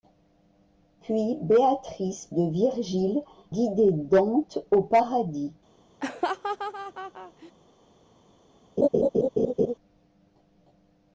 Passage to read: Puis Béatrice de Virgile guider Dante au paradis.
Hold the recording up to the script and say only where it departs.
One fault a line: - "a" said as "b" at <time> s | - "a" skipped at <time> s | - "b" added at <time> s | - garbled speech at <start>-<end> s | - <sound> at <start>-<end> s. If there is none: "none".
- laugh at 6.0-7.5 s
- laugh at 8.8-9.7 s